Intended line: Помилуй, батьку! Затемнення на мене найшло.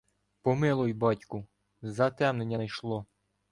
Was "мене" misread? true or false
true